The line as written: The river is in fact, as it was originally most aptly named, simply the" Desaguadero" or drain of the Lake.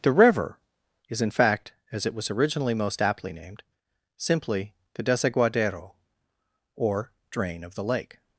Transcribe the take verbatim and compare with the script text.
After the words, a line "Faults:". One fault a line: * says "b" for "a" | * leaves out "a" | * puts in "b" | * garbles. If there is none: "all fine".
The river is in fact, as it was originally most aptly named, simply the" Desaguadero" or drain of the Lake.
Faults:
all fine